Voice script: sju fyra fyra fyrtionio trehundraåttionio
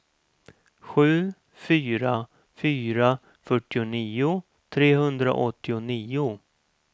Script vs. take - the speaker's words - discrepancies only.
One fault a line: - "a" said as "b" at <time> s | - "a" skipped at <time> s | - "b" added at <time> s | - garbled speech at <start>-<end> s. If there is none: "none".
none